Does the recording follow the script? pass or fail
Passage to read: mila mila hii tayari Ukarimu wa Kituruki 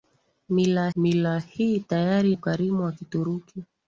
pass